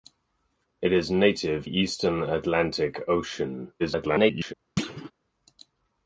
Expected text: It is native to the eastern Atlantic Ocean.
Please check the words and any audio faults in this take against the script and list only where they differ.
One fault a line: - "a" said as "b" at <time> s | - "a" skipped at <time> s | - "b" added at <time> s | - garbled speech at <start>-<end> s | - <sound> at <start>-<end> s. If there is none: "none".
- "to the" skipped at 1.7 s
- garbled speech at 3.8-4.5 s
- thud at 4.8-5.1 s